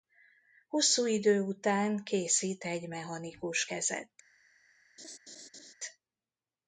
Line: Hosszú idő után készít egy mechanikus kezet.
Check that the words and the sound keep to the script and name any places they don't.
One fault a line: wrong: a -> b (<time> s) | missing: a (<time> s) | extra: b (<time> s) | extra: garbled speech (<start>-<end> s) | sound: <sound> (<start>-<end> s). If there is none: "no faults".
sound: laugh (5.0-5.7 s)